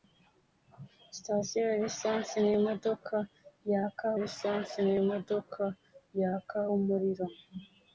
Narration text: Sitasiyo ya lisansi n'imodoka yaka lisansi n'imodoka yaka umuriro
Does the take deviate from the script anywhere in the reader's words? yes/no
no